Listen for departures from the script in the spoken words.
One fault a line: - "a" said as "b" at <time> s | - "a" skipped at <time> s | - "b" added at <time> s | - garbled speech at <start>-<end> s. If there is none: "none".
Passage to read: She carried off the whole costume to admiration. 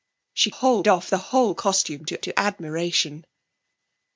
- "carried" said as "whole" at 0.5 s
- "to" added at 2.2 s